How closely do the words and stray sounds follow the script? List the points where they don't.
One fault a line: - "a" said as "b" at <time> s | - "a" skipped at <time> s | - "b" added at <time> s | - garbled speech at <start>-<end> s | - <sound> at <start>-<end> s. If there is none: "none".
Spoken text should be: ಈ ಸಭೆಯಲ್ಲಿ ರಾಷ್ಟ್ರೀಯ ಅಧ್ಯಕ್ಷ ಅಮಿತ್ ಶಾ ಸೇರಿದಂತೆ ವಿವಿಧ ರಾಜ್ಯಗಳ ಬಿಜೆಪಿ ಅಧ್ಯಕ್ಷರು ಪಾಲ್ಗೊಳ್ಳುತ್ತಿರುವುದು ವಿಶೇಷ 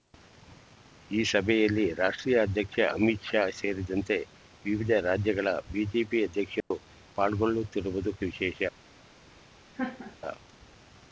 - dropout at 6.6-6.7 s
- laugh at 9.7-10.2 s